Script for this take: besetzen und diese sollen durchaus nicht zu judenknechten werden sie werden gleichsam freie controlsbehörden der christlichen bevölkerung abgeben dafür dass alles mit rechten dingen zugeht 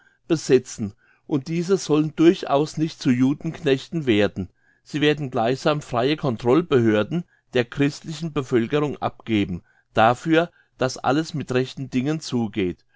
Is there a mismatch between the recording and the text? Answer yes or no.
no